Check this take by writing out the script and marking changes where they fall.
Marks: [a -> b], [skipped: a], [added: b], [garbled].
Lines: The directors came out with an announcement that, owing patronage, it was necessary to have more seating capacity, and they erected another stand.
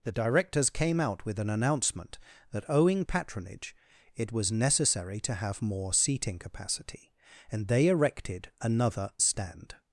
The directors came out with an announcement that, owing patronage, it was necessary to have more seating capacity, and they erected another stand.